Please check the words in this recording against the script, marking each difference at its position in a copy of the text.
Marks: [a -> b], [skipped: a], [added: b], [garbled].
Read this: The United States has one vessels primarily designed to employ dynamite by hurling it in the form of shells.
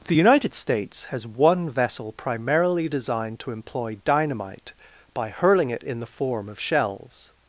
The United States has one [vessels -> vessel] primarily designed to employ dynamite by hurling it in the form of shells.